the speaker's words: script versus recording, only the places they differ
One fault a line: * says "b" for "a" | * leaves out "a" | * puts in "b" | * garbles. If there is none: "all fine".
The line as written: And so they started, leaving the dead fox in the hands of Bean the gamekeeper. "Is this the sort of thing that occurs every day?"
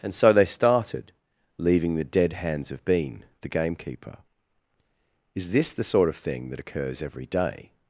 * leaves out "fox in the"